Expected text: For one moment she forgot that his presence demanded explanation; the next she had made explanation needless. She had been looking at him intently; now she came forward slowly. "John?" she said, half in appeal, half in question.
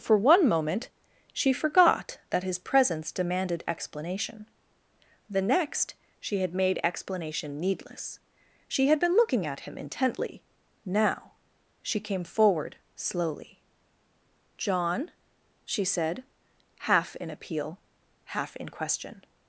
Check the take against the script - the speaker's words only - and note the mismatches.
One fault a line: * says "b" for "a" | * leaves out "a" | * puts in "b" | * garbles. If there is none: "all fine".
all fine